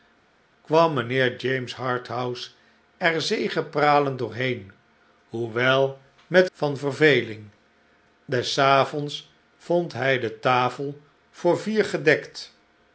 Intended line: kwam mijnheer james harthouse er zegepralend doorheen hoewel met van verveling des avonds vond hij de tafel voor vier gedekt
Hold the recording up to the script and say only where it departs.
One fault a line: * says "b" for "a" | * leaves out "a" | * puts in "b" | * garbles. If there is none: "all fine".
all fine